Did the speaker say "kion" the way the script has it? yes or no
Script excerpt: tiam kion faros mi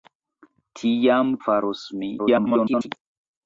no